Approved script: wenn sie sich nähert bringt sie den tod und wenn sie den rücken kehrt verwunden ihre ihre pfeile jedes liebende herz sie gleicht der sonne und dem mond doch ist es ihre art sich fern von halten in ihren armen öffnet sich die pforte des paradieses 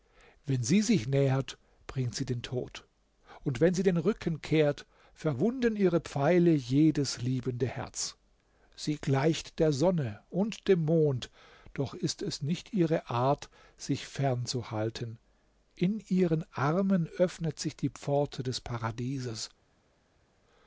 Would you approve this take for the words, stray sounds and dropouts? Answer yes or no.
no